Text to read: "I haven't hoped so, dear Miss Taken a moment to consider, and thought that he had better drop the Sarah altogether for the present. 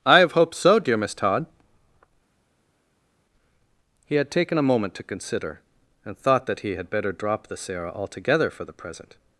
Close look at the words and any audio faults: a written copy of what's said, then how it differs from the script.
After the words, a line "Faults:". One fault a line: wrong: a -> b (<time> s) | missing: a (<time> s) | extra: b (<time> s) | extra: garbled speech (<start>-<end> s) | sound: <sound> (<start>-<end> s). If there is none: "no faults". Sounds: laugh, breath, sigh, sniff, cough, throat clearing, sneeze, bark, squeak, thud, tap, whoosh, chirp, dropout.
"I have hoped so, dear Miss Todd" he had taken a moment to consider, and thought that he had better drop the Sarah altogether for the present.
Faults:
wrong: haven't -> have (0.2 s)
extra: Todd he had (1.1 s)